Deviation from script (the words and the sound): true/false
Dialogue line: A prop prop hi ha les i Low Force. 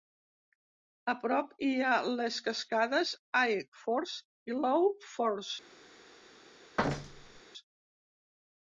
true